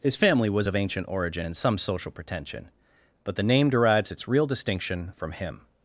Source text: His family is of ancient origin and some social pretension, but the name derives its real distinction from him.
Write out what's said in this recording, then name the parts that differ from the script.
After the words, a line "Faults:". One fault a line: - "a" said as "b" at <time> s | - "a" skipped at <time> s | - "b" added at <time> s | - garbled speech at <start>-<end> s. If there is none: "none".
His family was of ancient origin and some social pretension, but the name derives its real distinction from him.
Faults:
- "is" said as "was" at 0.5 s